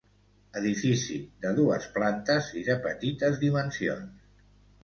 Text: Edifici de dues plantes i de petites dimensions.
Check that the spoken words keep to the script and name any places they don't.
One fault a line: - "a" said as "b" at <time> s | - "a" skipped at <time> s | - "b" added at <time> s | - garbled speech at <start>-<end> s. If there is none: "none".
none